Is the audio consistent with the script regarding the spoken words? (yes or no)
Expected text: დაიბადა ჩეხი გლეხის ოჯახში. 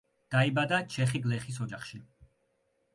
yes